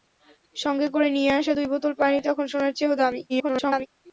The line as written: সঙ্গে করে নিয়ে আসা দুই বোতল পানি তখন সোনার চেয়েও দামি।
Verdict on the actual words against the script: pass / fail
fail